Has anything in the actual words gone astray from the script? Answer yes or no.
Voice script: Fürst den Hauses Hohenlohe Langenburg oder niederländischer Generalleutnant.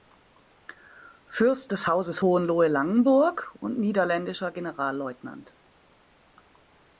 yes